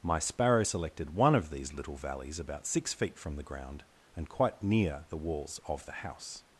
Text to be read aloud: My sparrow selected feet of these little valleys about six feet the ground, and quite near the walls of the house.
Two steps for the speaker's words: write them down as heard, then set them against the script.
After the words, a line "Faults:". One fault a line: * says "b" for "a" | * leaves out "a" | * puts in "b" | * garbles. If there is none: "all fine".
My sparrow selected one of these little valleys about six feet from the ground, and quite near the walls of the house.
Faults:
* says "one" for "feet"
* puts in "from"